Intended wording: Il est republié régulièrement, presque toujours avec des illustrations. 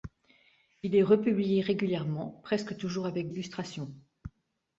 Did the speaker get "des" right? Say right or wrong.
wrong